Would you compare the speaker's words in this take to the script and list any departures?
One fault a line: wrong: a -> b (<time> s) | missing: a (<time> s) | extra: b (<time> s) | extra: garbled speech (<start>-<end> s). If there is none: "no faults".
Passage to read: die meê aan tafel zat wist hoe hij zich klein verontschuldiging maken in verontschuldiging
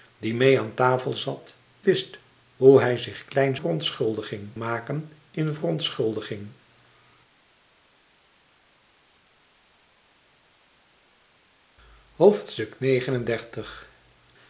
no faults